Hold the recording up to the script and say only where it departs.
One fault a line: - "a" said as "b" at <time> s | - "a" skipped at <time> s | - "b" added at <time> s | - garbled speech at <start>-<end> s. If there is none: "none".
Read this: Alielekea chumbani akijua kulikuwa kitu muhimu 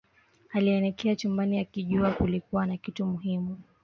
- "na" added at 2.7 s